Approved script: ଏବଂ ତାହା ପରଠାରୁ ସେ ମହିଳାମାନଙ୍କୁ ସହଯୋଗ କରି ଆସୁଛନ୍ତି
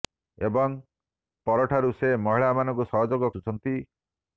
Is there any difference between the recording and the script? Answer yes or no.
yes